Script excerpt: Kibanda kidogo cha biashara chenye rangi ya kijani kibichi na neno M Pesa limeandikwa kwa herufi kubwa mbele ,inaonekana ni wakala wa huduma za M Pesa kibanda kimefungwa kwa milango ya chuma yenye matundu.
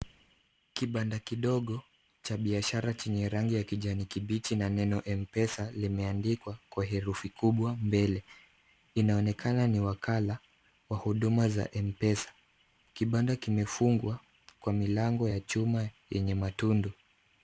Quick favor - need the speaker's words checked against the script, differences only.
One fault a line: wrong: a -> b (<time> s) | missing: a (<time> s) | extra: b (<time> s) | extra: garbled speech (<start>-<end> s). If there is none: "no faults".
no faults